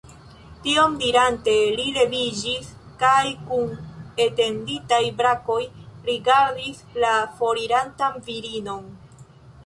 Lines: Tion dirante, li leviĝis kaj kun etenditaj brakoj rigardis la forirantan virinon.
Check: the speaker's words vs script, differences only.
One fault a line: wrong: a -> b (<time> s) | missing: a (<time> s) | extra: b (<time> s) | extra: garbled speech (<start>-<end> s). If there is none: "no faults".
no faults